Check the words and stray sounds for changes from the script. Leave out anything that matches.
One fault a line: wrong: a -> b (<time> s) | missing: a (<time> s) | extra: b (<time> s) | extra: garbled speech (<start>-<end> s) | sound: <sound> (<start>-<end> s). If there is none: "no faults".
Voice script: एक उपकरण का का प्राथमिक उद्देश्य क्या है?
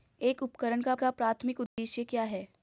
sound: dropout (1.7-1.8 s)